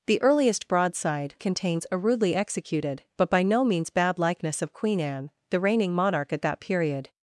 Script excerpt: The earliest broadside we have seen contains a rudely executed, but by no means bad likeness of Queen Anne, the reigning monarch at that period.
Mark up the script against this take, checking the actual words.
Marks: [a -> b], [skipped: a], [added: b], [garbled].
The earliest broadside [skipped: we have seen] contains a rudely executed, but by no means bad likeness of Queen Anne, the reigning monarch at that period.